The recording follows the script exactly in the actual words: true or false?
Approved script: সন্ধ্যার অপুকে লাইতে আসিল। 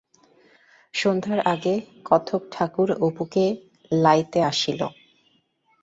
false